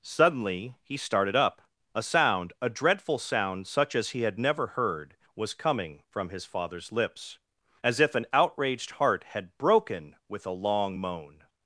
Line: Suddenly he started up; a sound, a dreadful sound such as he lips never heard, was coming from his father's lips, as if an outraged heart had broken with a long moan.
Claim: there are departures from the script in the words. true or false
true